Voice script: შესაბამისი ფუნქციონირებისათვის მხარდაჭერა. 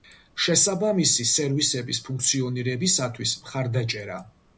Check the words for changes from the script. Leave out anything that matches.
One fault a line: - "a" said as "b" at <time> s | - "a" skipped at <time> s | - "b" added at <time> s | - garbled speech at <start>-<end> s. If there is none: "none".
- "სერვისების" added at 1.3 s